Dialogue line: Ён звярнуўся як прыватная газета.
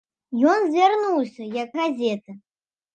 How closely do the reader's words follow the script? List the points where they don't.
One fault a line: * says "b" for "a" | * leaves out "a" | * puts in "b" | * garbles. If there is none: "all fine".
* leaves out "прыватная"